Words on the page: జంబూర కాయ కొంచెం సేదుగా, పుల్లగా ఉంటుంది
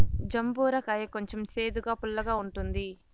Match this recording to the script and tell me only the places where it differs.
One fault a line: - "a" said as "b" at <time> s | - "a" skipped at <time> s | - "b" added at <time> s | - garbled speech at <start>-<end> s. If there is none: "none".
none